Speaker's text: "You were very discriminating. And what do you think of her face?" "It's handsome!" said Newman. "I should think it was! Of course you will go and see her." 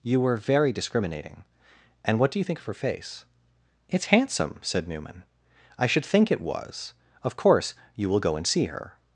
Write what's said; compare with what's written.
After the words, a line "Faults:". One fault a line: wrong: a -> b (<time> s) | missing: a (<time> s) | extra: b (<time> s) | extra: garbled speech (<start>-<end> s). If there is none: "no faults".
"You were very discriminating. And what do you think of her face?" "It's handsome!" said Newman. "I should think it was! Of course you will go and see her."
Faults:
no faults